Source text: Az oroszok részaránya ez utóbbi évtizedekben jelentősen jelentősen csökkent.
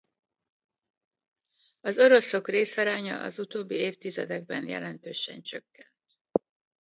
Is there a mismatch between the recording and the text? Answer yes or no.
yes